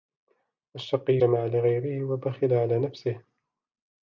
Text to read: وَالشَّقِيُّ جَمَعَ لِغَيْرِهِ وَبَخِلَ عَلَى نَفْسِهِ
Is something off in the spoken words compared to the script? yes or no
no